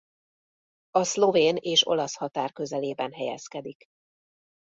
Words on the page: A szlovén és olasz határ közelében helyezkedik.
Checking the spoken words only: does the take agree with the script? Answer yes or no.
yes